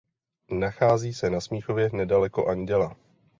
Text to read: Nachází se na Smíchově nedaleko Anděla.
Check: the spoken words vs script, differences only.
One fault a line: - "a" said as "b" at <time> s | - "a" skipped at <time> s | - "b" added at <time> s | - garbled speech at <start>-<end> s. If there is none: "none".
none